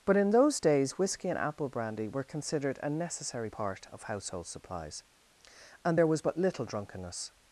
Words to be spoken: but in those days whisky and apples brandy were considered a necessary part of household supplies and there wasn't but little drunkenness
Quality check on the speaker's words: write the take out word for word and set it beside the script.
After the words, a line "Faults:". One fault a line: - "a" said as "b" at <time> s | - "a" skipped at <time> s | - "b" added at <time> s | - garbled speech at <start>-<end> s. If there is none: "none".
but in those days whisky and apple brandy were considered a necessary part of household supplies and there was but little drunkenness
Faults:
- "apples" said as "apple" at 1.4 s
- "wasn't" said as "was" at 6.1 s